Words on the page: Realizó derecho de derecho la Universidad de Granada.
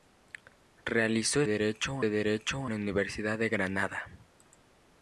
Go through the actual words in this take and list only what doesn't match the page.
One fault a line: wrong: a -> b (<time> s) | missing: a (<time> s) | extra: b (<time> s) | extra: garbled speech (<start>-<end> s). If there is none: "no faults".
no faults